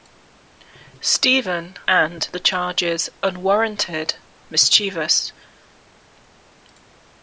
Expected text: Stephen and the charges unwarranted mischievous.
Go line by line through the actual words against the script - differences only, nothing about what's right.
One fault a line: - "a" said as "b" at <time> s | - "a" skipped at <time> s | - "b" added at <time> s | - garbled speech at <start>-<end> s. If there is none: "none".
none